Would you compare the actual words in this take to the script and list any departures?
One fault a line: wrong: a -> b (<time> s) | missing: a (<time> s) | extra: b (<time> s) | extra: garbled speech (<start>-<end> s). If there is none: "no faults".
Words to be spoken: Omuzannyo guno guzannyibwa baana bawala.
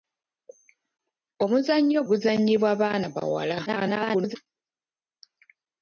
missing: guno (2.0 s)
extra: garbled speech (3.7-4.4 s)